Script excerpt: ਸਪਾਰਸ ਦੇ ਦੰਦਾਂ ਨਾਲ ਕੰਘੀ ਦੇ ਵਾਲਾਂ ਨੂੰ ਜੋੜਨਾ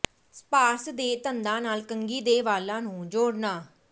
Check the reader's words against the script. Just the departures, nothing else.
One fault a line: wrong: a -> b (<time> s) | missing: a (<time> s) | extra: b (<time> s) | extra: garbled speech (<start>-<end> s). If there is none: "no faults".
no faults